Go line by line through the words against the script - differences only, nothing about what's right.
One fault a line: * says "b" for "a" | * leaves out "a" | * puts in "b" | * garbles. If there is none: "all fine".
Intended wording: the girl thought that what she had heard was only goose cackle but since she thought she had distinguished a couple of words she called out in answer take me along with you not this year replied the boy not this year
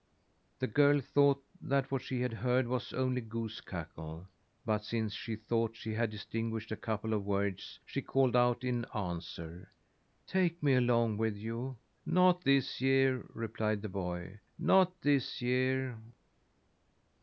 all fine